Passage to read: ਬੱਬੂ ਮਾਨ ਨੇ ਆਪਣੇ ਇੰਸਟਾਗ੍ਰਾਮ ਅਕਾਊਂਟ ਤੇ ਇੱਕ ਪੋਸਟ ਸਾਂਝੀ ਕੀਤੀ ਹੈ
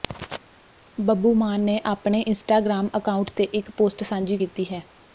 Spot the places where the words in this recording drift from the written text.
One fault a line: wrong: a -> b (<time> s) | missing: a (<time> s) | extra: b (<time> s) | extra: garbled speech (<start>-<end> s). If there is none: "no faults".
no faults